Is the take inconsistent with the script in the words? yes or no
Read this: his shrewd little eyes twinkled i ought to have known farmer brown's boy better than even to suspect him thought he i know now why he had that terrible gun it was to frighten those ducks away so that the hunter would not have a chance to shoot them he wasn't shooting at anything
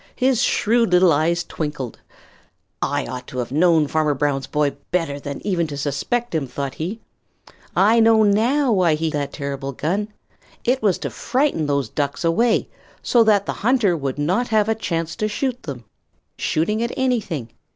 yes